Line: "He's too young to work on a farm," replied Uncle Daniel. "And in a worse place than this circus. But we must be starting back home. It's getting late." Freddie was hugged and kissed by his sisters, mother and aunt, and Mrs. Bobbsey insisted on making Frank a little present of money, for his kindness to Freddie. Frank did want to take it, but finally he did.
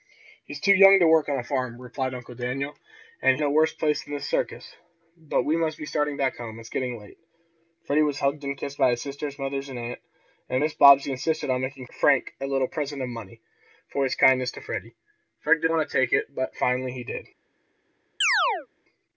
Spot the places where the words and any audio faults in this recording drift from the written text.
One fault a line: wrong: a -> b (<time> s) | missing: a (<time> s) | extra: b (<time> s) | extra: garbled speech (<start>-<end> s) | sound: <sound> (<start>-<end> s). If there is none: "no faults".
sound: chirp (18.2-18.7 s)